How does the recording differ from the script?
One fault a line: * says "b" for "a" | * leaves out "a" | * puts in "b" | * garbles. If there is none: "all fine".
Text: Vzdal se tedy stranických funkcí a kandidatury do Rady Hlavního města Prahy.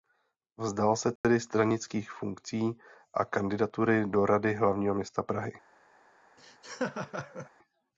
all fine